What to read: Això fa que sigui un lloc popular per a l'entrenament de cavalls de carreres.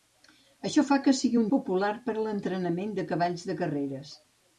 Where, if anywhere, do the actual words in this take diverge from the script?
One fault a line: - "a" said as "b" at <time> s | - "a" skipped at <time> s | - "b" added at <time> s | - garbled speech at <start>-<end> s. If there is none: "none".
- "lloc" skipped at 1.5 s